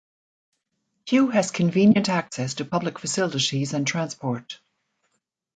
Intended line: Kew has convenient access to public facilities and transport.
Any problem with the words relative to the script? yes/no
no